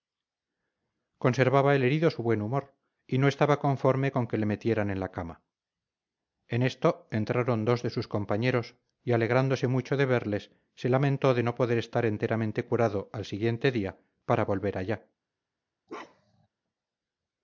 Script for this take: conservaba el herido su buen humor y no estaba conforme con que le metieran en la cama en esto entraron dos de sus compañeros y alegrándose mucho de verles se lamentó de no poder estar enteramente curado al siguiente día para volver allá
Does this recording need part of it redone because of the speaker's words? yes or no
no